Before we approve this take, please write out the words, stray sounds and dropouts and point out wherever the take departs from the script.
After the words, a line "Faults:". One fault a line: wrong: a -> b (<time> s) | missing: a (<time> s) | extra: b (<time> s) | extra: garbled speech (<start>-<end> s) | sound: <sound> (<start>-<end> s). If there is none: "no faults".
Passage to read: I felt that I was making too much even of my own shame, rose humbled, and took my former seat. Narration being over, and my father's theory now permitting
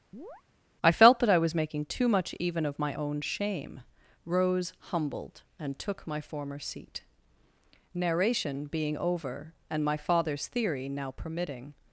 I felt that I was making too much even of my own shame, rose humbled, and took my former seat. Narration being over, and my father's theory now permitting
Faults:
sound: chirp (0.1-0.4 s)